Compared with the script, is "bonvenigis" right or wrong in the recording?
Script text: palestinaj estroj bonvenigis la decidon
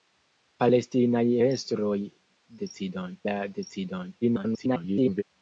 wrong